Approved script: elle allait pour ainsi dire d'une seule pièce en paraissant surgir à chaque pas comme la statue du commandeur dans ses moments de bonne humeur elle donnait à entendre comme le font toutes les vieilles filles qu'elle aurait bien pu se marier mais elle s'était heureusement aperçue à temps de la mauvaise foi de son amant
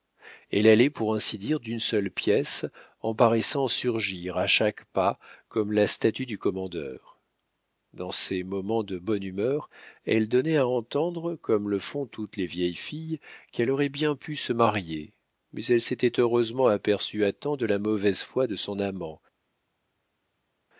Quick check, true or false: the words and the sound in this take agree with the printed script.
true